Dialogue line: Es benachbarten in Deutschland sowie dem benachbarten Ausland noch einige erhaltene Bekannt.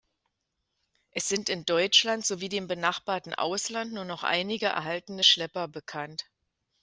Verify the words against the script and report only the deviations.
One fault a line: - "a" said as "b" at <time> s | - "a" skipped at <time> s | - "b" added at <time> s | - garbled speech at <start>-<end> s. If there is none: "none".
- "benachbarten" said as "sind" at 1.3 s
- "nur" added at 3.9 s
- "Schlepper" added at 5.2 s